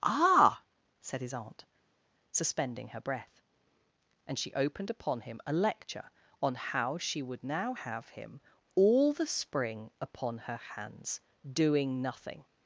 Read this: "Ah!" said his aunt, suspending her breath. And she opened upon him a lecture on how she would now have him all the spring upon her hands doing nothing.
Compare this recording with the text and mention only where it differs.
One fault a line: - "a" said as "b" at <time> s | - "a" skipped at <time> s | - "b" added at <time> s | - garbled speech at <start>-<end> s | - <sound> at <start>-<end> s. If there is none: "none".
none